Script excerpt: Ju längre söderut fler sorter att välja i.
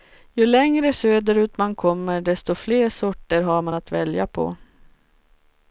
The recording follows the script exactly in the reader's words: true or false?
false